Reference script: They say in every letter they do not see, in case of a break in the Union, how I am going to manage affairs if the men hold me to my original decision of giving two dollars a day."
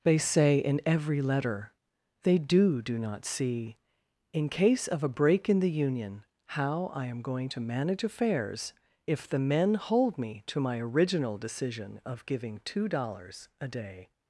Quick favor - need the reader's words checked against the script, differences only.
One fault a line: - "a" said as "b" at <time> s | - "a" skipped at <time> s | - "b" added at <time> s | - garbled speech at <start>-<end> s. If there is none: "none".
- "do" added at 2.8 s